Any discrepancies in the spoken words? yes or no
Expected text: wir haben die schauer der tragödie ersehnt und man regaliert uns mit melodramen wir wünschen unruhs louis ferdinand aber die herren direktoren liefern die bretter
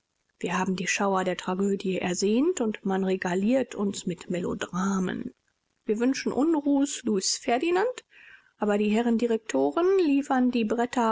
no